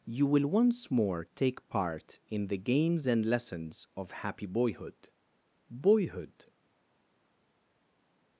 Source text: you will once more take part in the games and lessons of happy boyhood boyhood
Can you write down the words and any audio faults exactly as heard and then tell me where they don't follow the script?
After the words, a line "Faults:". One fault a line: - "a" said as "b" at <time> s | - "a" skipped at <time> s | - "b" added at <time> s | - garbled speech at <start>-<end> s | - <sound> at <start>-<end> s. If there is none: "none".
you will once more take part in the games and lessons of happy boyhood boyhood
Faults:
none